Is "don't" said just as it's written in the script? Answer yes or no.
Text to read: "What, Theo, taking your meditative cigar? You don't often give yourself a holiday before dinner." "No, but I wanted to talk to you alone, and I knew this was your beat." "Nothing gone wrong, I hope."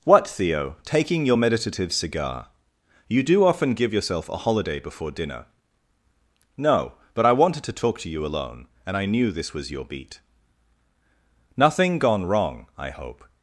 no